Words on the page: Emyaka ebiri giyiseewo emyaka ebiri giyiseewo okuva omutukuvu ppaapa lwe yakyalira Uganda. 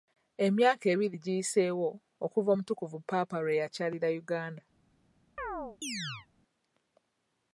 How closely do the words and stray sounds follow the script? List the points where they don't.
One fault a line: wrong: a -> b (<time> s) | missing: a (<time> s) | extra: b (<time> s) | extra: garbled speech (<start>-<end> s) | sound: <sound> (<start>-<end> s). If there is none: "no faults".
missing: emyaka ebiri giyiseewo (1.9 s)
sound: chirp (5.4-6.3 s)